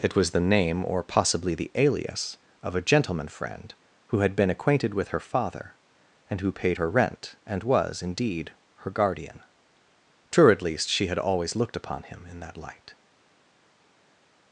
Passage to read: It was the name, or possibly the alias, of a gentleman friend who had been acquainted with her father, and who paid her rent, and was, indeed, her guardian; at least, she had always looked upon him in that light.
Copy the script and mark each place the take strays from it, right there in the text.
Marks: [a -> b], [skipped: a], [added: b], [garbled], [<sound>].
It was the name, or possibly the alias, of a gentleman friend who had been acquainted with her father, and who paid her rent, and was, indeed, her guardian; [added: true] at least, she had always looked upon him in that light.